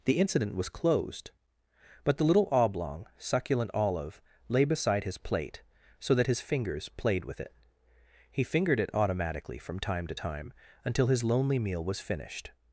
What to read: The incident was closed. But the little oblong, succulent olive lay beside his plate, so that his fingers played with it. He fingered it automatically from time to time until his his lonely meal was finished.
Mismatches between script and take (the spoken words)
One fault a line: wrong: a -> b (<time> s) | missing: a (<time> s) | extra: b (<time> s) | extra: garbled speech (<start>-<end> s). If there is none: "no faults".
missing: his (11.2 s)